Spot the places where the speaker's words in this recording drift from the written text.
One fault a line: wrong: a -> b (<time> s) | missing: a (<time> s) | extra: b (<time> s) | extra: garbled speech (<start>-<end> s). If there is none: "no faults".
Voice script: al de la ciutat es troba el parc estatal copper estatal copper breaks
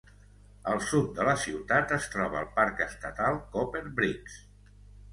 extra: sud (0.8 s)
missing: estatal copper (3.9 s)